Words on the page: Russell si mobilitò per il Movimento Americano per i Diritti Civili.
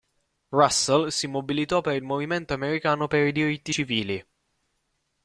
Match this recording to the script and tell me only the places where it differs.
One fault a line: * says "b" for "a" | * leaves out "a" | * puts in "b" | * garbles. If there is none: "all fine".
all fine